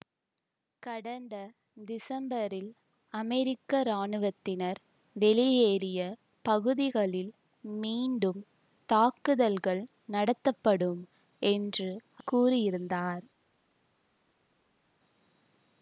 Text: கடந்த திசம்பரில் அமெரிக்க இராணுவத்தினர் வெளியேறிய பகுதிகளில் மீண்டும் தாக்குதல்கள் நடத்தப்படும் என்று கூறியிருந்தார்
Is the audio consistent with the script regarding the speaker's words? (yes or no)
yes